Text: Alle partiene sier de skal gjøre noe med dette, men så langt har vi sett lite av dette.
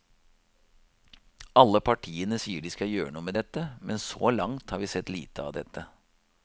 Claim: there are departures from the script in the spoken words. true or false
false